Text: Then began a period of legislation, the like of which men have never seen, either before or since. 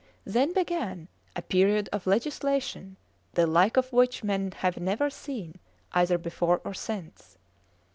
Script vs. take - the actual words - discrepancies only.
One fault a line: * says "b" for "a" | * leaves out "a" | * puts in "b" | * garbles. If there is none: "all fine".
all fine